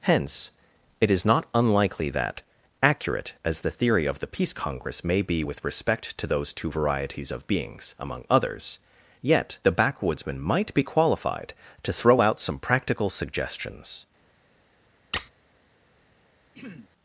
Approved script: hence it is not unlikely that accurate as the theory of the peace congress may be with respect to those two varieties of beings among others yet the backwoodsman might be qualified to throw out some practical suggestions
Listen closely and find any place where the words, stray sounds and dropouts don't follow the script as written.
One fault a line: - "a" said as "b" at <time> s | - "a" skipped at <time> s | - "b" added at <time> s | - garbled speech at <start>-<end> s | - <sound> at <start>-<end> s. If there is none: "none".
- squeak at 15.1-15.3 s
- throat clearing at 16.5-16.9 s